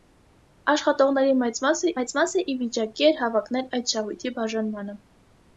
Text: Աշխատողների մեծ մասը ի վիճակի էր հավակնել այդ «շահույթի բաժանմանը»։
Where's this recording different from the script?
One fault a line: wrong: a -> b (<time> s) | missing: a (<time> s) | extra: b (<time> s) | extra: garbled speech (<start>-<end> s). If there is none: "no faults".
extra: մեծ մասը (2.0 s)